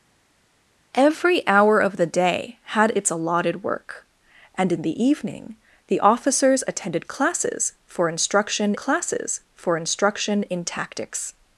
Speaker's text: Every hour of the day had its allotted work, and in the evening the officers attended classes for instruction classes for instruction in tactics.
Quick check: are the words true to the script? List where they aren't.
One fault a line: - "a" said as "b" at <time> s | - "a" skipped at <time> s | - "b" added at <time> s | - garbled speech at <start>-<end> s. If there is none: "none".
none